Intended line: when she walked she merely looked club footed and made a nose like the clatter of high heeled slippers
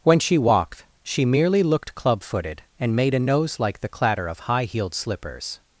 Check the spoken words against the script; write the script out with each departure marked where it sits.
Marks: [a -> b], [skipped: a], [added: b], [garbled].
when she walked she merely looked club footed and made a nose like the clatter of high heeled slippers